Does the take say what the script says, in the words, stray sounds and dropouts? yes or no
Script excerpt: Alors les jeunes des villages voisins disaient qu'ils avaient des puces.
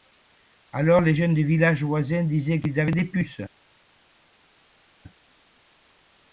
yes